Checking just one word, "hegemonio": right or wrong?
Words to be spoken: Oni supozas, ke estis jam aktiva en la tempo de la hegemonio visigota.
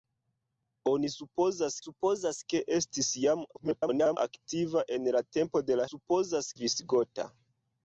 wrong